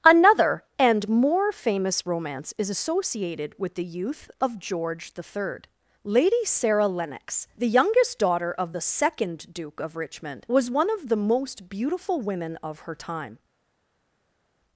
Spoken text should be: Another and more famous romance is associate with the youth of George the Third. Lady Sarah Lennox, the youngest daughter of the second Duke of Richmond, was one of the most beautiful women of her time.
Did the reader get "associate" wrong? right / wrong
wrong